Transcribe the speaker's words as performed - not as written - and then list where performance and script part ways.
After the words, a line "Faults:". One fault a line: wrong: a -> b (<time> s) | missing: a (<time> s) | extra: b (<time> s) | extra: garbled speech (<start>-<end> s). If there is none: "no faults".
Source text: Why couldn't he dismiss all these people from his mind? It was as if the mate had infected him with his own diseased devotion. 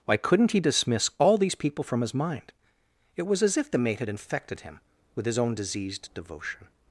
Why couldn't he dismiss all these people from his mind? It was as if the mate had infected him with his own diseased devotion.
Faults:
no faults